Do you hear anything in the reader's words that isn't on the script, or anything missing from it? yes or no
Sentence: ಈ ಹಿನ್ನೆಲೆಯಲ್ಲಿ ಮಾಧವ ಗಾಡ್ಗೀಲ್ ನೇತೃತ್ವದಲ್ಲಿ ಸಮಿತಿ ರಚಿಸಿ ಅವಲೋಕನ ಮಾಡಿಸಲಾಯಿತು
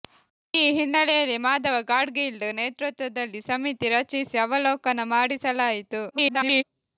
yes